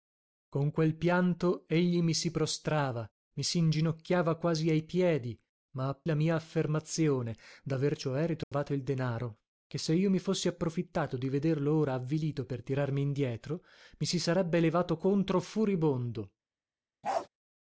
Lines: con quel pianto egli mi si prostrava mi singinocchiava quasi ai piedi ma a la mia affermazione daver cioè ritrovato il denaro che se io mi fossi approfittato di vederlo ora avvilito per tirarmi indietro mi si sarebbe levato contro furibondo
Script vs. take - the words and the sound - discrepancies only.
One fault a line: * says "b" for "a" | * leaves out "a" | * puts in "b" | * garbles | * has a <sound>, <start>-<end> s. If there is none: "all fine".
* has a dropout, 8.4-8.5 s
* has a bark, 17.0-17.3 s